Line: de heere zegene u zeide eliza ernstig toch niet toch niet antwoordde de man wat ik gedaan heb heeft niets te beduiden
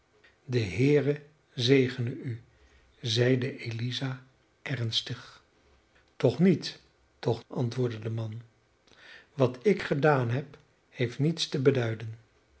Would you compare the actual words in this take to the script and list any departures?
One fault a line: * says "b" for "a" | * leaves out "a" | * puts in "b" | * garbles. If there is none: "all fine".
* leaves out "niet"